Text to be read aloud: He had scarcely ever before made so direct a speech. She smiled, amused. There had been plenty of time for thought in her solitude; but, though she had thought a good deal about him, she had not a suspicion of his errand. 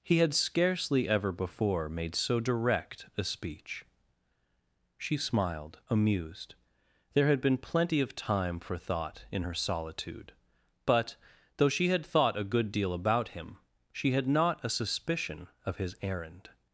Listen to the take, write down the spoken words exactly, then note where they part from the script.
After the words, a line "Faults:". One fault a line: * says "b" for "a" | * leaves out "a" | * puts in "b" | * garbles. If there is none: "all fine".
He had scarcely ever before made so direct a speech. She smiled, amused. There had been plenty of time for thought in her solitude; but, though she had thought a good deal about him, she had not a suspicion of his errand.
Faults:
all fine